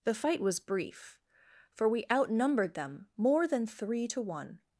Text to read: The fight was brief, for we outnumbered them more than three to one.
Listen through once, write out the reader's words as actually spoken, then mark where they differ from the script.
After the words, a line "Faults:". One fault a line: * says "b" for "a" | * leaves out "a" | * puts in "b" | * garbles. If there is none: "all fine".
The fight was brief, for we outnumbered them more than three to one.
Faults:
all fine